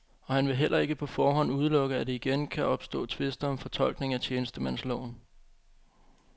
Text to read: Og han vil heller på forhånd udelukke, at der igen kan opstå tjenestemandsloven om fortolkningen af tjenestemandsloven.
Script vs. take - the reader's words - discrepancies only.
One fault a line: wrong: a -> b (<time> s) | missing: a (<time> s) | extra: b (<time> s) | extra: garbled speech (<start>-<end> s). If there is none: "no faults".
extra: ikke (0.8 s)
wrong: tjenestemandsloven -> tvister (3.0 s)